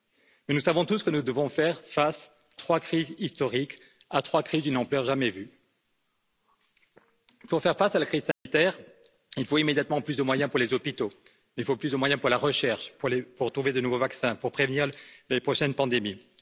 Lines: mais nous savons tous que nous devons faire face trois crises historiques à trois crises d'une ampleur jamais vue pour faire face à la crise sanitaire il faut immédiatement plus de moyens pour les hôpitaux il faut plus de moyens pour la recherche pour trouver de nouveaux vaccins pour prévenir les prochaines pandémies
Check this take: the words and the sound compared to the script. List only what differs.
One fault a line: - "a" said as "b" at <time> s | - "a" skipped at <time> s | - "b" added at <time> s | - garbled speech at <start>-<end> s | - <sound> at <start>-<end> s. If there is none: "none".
- dropout at 8.3-8.5 s